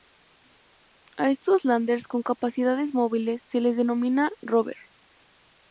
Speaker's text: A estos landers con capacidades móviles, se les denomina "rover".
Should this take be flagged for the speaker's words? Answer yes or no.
no